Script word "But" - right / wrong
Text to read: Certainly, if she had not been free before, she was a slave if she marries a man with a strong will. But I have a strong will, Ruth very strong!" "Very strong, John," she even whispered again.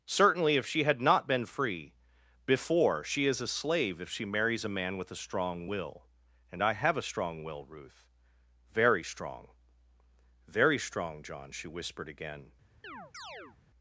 wrong